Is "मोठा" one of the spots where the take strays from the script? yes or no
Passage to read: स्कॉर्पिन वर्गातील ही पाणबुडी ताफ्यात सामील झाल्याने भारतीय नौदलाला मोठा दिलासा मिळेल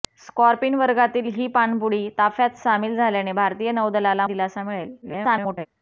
yes